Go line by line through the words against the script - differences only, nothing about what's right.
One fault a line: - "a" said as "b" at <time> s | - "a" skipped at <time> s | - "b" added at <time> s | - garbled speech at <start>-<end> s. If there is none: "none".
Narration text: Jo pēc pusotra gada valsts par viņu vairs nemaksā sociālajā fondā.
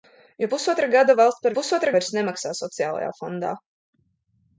- "pēc" skipped at 0.5 s
- "viņu" said as "pusotra" at 1.5 s